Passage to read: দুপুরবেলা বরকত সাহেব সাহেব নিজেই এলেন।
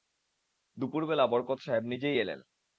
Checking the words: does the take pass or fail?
fail